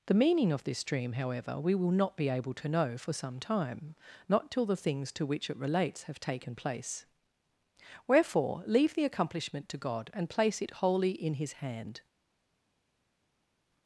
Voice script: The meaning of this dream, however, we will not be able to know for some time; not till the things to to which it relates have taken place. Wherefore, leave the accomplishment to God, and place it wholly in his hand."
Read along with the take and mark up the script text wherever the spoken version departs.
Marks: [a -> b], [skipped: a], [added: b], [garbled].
The meaning of this dream, however, we will not be able to know for some time; not till the things to [skipped: to] which it relates have taken place. Wherefore, leave the accomplishment to God, and place it wholly in his hand."